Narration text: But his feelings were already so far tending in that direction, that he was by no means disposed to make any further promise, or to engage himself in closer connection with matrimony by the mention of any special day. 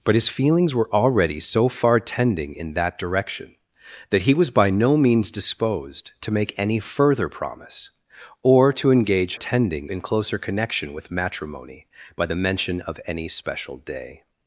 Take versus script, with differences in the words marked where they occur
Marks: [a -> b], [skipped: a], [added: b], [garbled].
But his feelings were already so far tending in that direction, that he was by no means disposed to make any further promise, or to engage [himself -> tending] in closer connection with matrimony by the mention of any special day.